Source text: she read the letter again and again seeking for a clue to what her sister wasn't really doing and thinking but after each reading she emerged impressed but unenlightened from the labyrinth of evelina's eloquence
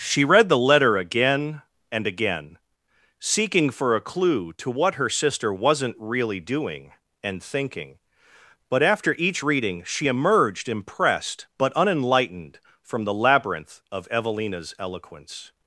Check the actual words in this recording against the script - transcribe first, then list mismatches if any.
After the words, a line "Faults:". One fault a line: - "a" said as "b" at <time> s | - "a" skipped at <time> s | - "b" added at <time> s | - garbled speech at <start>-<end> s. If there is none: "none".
she read the letter again and again seeking for a clue to what her sister wasn't really doing and thinking but after each reading she emerged impressed but unenlightened from the labyrinth of evelina's eloquence
Faults:
none